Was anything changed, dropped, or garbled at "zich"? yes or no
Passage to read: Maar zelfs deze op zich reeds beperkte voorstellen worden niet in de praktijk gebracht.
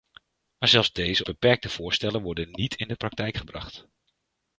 yes